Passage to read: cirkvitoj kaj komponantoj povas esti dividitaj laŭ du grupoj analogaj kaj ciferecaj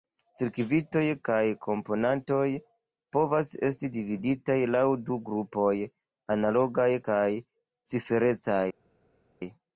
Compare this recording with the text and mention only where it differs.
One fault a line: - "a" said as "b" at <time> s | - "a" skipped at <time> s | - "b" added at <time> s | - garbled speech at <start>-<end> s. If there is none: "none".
none